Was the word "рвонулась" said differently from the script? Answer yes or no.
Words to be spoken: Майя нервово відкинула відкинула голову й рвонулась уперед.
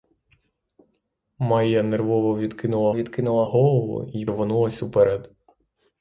no